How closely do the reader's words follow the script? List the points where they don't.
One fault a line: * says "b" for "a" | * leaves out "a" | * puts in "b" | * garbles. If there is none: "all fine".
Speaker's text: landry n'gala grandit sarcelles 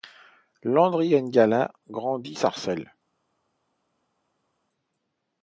all fine